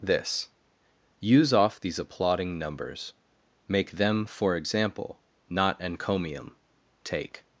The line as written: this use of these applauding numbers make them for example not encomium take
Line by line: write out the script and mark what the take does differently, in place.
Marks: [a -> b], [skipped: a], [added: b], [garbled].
this use [of -> off] these applauding numbers make them for example not encomium take